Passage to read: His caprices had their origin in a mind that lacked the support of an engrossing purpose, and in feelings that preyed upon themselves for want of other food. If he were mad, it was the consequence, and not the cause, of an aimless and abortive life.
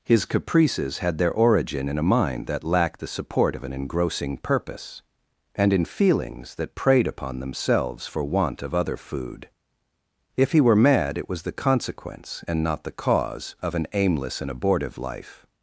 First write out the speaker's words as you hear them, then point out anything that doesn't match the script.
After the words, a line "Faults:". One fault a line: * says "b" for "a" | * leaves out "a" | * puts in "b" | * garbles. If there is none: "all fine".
His caprices had their origin in a mind that lacked the support of an engrossing purpose, and in feelings that preyed upon themselves for want of other food. If he were mad, it was the consequence, and not the cause, of an aimless and abortive life.
Faults:
all fine